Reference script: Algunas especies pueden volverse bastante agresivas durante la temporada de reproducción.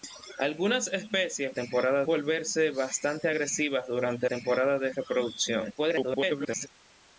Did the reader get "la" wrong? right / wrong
wrong